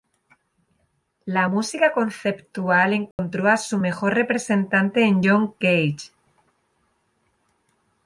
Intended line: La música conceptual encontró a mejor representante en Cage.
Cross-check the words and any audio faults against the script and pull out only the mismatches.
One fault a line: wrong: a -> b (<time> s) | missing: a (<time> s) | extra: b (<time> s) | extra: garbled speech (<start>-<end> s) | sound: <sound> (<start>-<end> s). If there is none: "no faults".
sound: dropout (3.1-3.2 s)
extra: su (3.6 s)
extra: John (5.2 s)